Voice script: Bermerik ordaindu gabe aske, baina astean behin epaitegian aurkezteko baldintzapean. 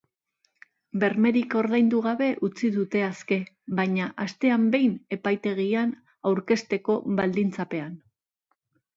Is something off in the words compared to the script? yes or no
yes